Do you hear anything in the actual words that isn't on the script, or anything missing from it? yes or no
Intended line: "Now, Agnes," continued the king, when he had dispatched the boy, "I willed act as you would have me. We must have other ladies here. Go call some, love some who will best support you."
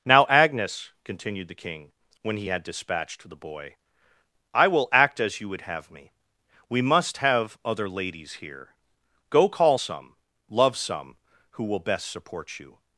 yes